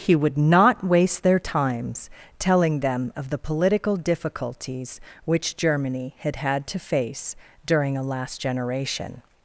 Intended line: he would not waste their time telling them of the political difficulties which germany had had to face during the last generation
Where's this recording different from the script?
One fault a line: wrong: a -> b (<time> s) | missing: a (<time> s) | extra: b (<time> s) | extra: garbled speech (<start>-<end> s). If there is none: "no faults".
wrong: time -> times (1.4 s)
wrong: the -> a (8.0 s)